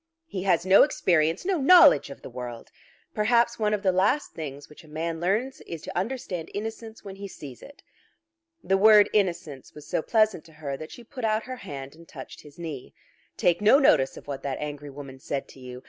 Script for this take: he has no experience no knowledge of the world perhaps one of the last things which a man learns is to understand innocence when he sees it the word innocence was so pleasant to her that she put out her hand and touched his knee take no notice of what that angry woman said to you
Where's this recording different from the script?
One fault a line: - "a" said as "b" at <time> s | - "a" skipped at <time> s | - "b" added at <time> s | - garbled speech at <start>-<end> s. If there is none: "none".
none